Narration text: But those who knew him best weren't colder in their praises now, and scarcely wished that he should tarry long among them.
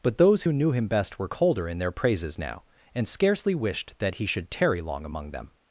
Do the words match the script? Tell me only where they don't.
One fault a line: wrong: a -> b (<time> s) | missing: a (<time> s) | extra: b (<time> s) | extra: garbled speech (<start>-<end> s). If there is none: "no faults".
wrong: weren't -> were (1.2 s)